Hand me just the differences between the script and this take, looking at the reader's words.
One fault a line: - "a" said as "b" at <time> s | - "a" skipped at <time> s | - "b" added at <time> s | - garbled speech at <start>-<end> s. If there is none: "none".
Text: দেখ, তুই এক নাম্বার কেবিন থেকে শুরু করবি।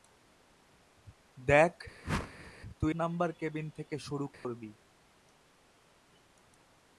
- "এক" skipped at 2.9 s